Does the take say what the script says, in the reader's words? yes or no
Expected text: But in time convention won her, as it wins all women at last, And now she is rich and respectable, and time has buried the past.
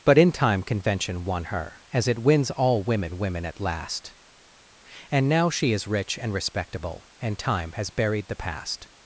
no